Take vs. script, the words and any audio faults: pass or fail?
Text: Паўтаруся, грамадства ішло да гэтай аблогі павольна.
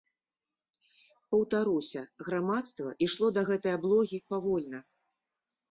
pass